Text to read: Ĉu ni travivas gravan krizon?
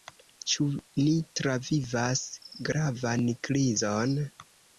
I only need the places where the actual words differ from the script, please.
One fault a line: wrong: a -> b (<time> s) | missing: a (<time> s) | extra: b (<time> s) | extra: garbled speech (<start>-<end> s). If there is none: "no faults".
no faults